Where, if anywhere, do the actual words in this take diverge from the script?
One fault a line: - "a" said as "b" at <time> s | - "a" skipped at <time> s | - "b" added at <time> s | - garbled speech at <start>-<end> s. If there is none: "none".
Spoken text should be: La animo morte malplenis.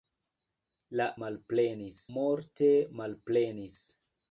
- "animo" said as "malplenis" at 1.3 s